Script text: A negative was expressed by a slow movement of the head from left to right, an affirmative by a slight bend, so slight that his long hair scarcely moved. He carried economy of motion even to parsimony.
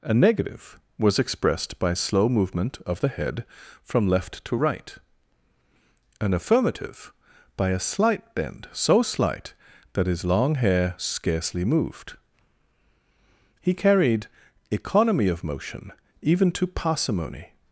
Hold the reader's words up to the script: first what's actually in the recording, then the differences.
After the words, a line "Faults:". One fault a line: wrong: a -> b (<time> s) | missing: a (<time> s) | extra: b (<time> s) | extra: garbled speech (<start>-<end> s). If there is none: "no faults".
A negative was expressed by slow movement of the head from left to right, an affirmative by a slight bend, so slight that his long hair scarcely moved. He carried economy of motion even to parsimony.
Faults:
missing: a (1.9 s)